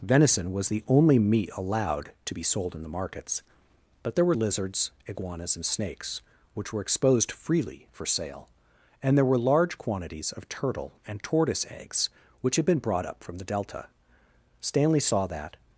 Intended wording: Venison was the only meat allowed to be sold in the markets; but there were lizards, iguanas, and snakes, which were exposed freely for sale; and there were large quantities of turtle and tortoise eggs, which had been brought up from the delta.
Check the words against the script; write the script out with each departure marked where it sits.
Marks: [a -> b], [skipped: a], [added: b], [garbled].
Venison was the only meat allowed to be sold in the markets; but there were lizards, iguanas, and snakes, which were exposed freely for sale; and there were large quantities of turtle and tortoise eggs, which had been brought up from the delta. [added: Stanley saw that]